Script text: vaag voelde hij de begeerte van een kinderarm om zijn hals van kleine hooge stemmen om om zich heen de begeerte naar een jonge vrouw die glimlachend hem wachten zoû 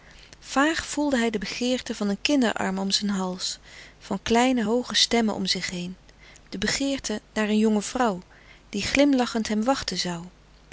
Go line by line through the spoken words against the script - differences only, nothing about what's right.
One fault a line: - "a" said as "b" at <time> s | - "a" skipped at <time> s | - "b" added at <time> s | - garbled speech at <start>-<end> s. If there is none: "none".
- "om" skipped at 5.4 s